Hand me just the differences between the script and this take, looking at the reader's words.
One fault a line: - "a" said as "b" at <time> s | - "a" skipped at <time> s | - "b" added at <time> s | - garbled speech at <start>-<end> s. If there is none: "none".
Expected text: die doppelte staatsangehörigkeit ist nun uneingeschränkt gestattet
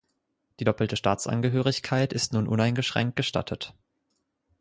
none